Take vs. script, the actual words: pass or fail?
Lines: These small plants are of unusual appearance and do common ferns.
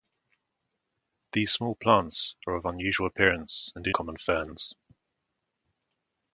pass